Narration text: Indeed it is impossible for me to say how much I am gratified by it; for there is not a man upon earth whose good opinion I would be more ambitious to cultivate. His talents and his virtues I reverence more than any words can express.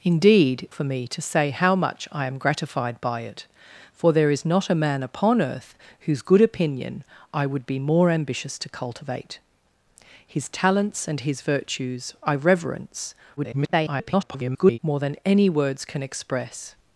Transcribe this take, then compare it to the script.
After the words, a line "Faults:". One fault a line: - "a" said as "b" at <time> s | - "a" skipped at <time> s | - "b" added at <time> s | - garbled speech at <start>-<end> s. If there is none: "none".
Indeed for me to say how much I am gratified by it; for there is not a man upon earth whose good opinion I would be more ambitious to cultivate. His talents and his virtues I reverence [garbled] more than any words can express.
Faults:
- "it is impossible" skipped at 0.7 s
- garbled speech at 13.4-14.8 s